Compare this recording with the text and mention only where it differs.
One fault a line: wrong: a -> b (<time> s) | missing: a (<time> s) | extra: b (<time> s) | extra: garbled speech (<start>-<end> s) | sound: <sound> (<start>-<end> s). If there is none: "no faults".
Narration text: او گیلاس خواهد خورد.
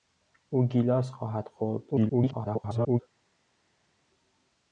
extra: garbled speech (1.9-3.0 s)